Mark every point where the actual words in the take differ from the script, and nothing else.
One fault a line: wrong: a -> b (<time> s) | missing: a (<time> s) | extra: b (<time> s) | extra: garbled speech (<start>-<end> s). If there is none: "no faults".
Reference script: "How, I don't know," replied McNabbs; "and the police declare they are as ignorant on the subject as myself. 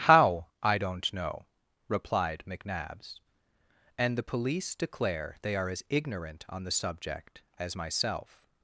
no faults